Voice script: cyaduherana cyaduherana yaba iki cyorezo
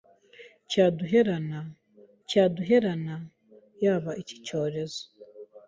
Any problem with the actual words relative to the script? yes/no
no